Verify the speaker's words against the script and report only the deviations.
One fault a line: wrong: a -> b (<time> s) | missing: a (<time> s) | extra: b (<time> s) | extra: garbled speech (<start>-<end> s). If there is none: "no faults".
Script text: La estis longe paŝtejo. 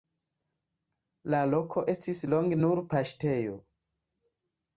extra: loko (1.5 s)
extra: nur (2.6 s)